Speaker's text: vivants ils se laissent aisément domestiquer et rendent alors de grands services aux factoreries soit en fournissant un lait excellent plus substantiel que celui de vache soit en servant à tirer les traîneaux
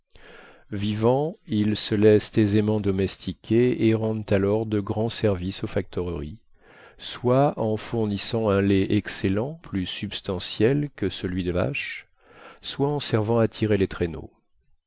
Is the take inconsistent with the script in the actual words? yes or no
no